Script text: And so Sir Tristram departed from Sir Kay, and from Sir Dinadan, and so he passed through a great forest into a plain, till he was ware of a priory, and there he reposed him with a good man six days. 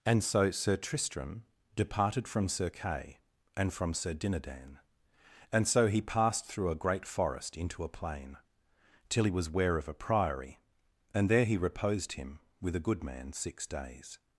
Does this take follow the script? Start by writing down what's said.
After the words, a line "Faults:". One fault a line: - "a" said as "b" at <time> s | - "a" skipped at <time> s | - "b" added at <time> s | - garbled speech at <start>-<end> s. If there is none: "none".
And so Sir Tristram departed from Sir Kay, and from Sir Dinadan, and so he passed through a great forest into a plain, till he was ware of a priory, and there he reposed him with a good man six days.
Faults:
none